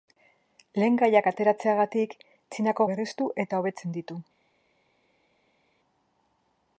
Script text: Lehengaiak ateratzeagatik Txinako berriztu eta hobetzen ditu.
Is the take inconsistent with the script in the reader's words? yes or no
no